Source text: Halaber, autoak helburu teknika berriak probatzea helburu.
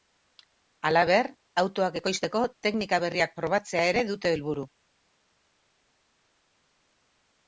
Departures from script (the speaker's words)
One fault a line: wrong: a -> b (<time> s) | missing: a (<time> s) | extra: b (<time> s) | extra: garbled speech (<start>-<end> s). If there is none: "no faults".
wrong: helburu -> ekoizteko (2.0 s)
extra: ere dute (3.9 s)